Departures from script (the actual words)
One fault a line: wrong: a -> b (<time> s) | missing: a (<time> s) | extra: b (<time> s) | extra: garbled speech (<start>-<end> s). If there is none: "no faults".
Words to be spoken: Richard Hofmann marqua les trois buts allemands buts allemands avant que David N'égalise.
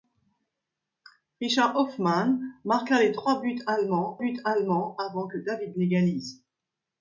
no faults